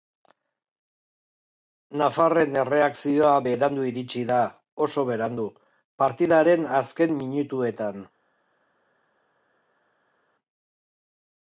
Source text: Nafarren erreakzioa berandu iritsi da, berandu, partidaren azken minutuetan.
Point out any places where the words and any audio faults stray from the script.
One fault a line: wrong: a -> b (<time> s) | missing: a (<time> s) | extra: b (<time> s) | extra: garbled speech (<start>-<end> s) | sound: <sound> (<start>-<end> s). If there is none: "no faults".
extra: oso (4.9 s)